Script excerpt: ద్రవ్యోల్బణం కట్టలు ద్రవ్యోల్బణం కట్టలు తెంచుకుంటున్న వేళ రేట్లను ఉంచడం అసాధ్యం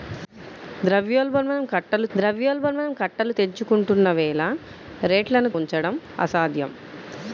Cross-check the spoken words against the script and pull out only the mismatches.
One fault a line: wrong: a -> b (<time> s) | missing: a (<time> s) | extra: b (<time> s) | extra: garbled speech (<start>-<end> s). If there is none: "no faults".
no faults